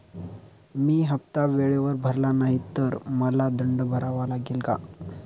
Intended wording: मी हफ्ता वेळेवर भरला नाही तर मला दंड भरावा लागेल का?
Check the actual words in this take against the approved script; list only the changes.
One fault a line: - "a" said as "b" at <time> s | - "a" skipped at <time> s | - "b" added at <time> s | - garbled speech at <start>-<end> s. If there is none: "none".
none